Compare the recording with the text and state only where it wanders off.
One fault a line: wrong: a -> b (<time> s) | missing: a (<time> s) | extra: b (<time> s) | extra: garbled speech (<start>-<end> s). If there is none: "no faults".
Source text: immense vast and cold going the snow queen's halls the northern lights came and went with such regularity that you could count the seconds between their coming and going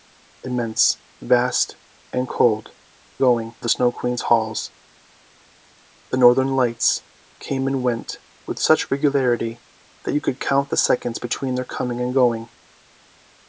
no faults